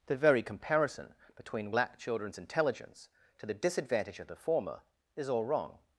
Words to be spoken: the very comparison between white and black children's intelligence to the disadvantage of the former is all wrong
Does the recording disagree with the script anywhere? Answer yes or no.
yes